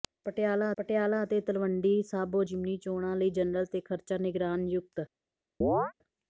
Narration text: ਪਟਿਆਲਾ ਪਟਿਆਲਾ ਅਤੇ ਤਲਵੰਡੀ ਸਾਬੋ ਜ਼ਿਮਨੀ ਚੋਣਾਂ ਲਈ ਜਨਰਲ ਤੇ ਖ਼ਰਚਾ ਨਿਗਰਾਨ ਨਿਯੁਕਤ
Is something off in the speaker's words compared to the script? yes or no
no